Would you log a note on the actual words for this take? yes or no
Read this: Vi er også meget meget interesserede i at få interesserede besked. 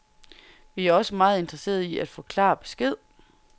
yes